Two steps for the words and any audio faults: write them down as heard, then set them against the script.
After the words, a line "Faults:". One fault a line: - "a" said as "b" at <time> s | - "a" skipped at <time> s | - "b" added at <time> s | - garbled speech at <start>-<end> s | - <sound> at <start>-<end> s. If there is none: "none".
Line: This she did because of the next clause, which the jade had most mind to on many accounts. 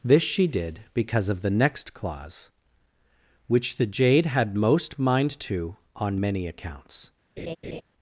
This she did because of the next clause, which the jade had most mind to on many accounts.
Faults:
- laugh at 7.4-7.8 s